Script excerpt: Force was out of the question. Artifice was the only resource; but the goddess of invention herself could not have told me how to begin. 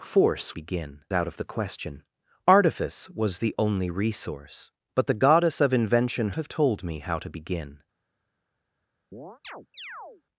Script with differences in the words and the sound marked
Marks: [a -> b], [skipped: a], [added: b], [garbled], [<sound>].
Force [was -> begin] out of the question. Artifice was the only resource; but the goddess of invention [skipped: herself could not] have told me how to begin. [chirp]